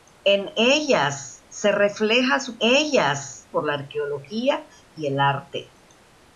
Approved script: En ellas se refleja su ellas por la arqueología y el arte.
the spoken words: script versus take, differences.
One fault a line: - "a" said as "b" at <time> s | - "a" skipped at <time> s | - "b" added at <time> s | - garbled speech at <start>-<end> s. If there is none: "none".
none